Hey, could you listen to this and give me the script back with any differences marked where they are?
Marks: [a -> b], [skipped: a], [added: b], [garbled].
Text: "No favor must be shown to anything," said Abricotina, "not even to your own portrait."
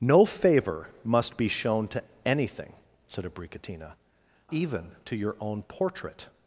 "No favor must be shown to anything," said Abricotina, [skipped: "not] even to your own portrait."